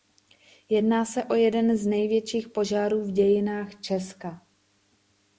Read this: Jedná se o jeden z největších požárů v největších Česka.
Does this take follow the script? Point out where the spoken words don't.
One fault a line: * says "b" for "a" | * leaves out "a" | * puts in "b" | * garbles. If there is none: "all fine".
* says "dějinách" for "největších"